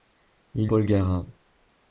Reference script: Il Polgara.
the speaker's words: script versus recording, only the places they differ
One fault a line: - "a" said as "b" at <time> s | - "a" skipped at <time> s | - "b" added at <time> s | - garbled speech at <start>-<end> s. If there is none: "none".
none